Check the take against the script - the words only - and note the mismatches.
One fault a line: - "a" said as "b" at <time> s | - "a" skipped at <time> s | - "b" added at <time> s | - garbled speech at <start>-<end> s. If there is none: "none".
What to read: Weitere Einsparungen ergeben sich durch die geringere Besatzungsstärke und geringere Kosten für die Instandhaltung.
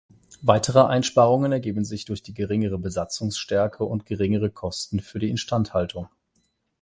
none